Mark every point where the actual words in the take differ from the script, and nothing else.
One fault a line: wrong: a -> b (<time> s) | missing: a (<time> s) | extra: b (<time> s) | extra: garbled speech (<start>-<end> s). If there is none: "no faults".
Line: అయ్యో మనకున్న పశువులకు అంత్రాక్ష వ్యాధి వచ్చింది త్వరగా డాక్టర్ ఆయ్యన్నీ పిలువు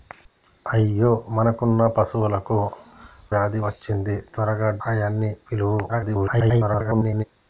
missing: అంత్రాక్ష (2.6 s)
missing: డాక్టర్ (4.7 s)
extra: garbled speech (5.9-7.2 s)